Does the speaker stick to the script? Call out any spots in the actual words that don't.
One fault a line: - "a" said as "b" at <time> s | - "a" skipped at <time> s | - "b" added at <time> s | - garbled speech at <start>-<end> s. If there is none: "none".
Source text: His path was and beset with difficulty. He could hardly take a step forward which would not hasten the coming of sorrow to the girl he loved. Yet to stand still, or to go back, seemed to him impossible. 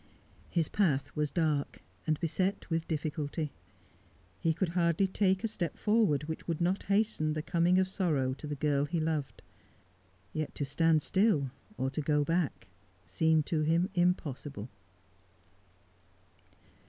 - "dark" added at 1.3 s